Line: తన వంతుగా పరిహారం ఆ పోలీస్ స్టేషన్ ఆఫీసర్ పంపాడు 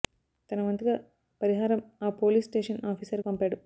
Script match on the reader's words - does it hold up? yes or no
yes